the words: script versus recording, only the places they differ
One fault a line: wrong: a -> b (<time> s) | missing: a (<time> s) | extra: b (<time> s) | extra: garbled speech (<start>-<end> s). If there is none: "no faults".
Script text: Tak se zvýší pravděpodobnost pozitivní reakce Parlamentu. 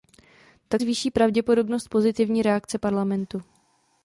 missing: se (0.8 s)